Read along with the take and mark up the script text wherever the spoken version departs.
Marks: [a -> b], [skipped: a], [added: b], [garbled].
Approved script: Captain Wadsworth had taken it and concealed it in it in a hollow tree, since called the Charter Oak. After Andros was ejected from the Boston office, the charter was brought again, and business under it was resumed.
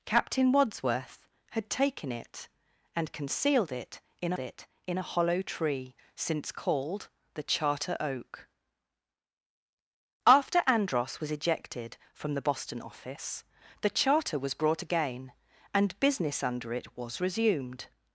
Captain Wadsworth had taken it and concealed it in it in a hollow tree, since called the Charter Oak. After Andros was ejected from the Boston office, the charter was brought again, and business under it was resumed.